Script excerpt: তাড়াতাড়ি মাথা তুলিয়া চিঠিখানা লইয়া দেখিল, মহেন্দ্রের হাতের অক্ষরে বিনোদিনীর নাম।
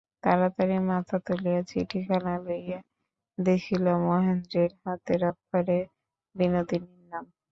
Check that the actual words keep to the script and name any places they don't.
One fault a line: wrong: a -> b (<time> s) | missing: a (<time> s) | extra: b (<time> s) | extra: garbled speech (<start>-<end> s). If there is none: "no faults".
no faults